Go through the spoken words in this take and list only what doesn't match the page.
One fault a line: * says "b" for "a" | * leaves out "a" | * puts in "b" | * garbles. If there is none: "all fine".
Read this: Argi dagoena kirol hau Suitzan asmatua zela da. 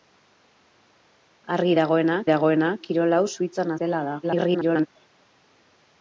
* puts in "dagoena"
* leaves out "asmatua"
* garbles